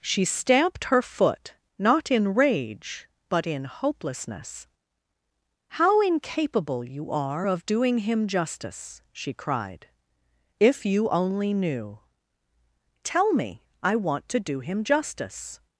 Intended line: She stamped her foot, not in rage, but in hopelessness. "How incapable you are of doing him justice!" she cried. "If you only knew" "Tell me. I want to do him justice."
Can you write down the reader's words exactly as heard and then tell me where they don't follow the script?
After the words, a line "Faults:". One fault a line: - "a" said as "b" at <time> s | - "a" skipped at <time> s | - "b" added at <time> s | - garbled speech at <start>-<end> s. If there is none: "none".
She stamped her foot, not in rage, but in hopelessness. "How incapable you are of doing him justice!" she cried. "If you only knew" "Tell me. I want to do him justice."
Faults:
none